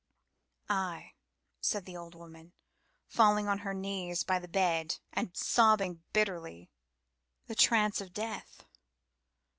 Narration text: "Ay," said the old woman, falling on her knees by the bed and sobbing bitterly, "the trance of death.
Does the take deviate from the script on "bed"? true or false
false